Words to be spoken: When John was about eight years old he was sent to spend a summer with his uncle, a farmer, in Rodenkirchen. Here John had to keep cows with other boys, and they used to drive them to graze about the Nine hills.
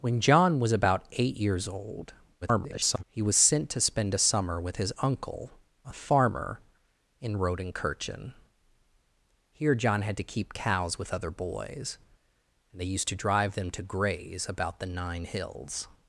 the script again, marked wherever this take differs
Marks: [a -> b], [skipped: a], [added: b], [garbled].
When John was about eight years old [garbled] he was sent to spend a summer with his uncle, a farmer, in Rodenkirchen. Here John had to keep cows with other boys, and they used to drive them to graze about the Nine hills.